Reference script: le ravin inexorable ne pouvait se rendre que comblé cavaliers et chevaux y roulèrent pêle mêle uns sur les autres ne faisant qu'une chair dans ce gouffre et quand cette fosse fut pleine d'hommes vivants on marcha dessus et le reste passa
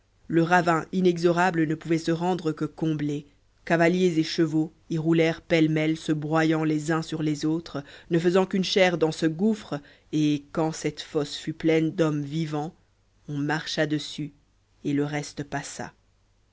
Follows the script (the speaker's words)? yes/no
no